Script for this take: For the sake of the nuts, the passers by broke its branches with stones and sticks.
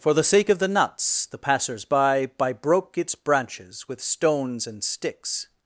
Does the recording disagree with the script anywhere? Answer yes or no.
yes